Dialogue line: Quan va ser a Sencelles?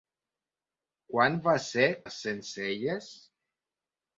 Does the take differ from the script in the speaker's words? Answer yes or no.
no